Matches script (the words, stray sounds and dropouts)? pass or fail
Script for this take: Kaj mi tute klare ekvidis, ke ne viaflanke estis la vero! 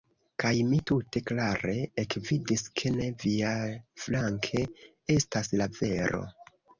fail